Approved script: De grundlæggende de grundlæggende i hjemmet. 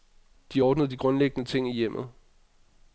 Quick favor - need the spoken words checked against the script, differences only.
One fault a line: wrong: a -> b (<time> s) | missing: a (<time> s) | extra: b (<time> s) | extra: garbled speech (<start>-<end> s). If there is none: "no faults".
wrong: grundlæggende -> ordnede (0.6 s)
extra: ting (1.5 s)